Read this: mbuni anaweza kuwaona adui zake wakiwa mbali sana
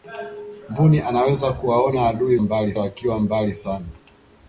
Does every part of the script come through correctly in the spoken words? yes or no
no